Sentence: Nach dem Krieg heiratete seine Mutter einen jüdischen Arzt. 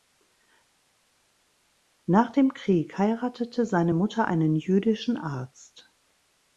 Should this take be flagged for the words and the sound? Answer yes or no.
no